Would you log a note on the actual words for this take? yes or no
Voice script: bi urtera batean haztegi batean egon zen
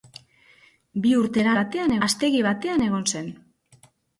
no